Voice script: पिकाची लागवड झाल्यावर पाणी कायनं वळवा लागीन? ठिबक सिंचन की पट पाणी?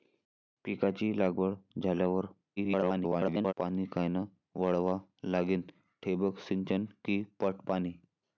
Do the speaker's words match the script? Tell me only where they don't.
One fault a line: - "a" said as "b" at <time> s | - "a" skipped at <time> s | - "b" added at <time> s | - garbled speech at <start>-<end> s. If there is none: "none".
- garbled speech at 2.6-3.5 s